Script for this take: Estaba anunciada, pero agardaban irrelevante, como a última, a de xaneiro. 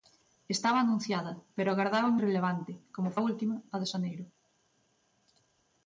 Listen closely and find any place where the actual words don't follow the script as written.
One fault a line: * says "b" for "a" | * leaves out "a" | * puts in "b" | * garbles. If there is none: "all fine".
all fine